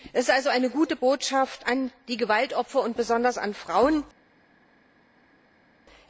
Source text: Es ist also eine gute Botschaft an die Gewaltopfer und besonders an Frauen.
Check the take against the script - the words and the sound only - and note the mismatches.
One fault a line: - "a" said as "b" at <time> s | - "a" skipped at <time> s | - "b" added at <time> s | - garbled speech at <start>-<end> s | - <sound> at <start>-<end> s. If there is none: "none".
none